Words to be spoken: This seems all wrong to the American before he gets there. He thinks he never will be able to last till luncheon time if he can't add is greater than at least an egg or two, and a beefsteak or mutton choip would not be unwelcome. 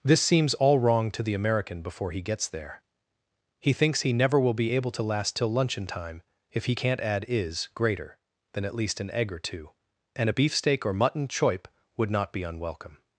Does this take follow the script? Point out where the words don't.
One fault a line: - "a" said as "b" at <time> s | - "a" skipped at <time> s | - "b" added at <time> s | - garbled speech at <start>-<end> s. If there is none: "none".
none